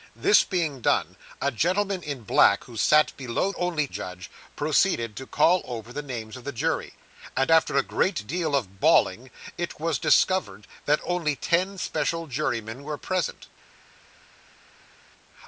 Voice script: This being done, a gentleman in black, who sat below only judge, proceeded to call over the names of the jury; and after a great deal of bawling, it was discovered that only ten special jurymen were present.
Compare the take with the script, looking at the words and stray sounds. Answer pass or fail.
pass